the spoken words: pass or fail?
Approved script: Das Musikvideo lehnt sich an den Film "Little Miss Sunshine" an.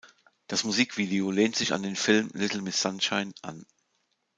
pass